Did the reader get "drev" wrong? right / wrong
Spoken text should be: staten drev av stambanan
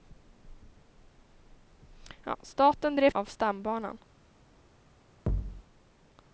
right